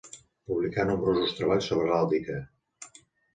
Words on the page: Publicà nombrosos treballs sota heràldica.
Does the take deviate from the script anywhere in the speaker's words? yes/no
yes